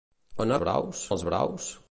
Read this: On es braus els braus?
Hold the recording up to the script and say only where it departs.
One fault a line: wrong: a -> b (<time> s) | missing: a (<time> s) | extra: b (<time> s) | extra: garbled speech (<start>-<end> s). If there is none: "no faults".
no faults